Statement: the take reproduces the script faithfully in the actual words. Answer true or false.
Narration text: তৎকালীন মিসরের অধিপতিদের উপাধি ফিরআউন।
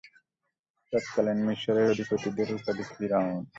true